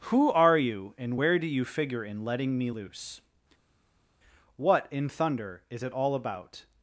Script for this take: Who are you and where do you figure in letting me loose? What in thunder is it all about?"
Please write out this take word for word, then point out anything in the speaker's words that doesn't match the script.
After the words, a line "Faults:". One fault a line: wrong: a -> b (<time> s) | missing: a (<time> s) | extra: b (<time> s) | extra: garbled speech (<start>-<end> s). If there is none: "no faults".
Who are you and where do you figure in letting me loose? What in thunder is it all about?"
Faults:
no faults